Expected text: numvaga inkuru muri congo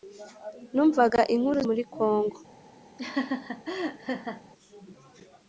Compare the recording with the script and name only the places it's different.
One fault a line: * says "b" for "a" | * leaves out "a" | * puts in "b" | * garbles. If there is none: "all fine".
all fine